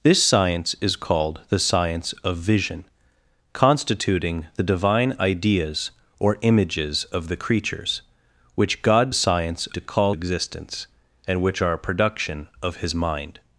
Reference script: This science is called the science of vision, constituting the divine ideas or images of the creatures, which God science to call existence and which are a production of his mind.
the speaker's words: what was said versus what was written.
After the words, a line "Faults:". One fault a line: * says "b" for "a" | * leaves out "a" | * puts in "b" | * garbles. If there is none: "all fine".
This science is called the science of vision, constituting the divine ideas or images of the creatures, which God science to call existence and which are a production of his mind.
Faults:
all fine